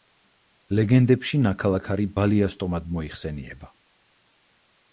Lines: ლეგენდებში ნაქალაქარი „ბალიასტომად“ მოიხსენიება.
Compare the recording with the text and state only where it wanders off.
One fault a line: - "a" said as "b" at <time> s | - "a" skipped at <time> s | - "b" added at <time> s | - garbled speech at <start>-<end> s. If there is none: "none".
none